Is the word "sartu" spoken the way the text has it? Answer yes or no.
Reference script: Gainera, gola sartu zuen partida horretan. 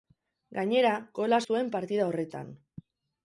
no